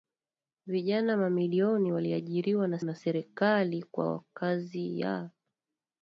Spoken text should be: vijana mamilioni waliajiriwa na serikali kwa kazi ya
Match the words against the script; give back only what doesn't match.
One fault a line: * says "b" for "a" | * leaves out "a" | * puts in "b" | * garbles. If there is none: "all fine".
* puts in "na"